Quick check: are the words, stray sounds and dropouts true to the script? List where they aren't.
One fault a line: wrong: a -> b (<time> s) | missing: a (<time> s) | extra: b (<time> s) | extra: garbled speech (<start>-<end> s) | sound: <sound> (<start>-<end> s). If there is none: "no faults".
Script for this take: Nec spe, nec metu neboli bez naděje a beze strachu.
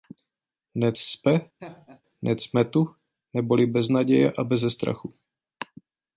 sound: laugh (1.6-2.0 s)